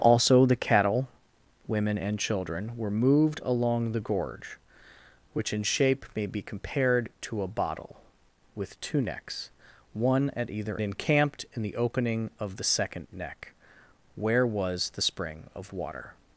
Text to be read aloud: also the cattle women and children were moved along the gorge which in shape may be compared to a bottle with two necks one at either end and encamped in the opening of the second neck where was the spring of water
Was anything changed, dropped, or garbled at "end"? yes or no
yes